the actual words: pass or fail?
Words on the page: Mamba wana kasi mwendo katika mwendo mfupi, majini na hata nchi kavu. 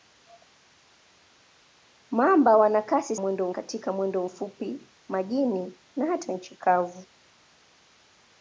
pass